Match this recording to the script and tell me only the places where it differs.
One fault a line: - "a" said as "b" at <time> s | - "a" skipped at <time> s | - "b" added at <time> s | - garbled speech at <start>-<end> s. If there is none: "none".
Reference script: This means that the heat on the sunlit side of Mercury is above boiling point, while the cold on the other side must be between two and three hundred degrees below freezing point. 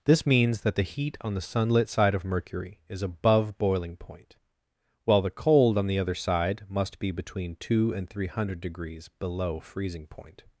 none